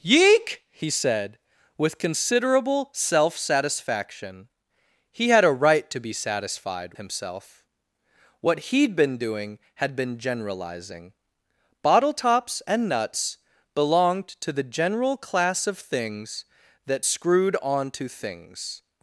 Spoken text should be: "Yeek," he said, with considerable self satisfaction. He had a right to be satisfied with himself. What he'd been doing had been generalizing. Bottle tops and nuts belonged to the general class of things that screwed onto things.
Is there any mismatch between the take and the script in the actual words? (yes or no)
yes